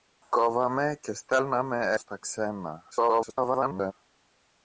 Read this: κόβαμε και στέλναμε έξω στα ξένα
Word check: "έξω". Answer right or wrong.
wrong